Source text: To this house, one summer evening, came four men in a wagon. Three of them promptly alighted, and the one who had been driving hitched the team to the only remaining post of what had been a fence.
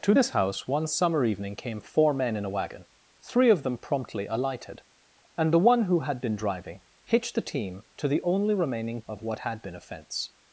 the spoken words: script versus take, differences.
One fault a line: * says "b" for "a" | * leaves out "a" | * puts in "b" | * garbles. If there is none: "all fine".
* leaves out "post"